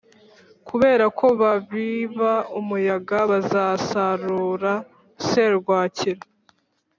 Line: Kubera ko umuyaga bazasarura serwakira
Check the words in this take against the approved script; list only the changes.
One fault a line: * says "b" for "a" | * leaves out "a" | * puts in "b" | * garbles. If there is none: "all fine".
* puts in "babiba"